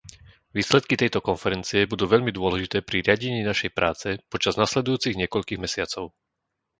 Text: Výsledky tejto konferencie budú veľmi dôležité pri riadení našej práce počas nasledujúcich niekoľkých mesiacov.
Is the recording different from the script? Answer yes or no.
no